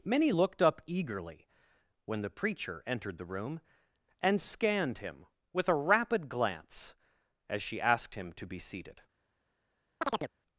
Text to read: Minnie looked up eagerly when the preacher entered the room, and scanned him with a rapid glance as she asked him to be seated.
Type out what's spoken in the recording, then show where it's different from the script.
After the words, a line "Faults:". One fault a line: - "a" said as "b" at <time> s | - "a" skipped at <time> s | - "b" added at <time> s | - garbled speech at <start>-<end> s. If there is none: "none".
Minnie looked up eagerly when the preacher entered the room, and scanned him with a rapid glance as she asked him to be seated.
Faults:
none